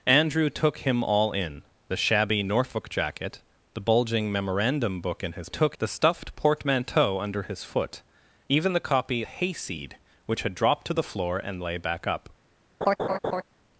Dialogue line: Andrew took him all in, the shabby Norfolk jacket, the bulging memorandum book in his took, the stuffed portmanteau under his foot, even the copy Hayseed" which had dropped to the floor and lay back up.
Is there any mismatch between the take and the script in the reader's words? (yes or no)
no